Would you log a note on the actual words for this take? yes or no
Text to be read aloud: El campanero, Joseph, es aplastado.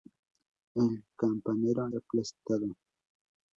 yes